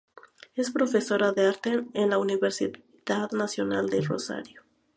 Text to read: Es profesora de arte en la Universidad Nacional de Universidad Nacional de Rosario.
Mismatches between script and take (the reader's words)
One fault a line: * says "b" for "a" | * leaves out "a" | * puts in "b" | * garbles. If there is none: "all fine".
* leaves out "Universidad Nacional de"